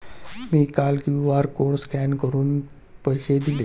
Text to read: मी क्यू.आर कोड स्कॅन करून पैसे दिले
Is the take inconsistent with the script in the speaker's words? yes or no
yes